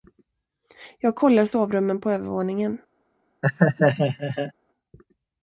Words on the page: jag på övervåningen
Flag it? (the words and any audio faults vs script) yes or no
yes